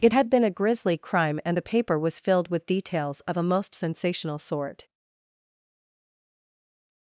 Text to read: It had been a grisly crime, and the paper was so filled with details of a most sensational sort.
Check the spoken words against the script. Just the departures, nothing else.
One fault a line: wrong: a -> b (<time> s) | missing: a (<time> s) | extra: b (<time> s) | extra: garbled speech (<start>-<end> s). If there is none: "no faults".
missing: so (2.2 s)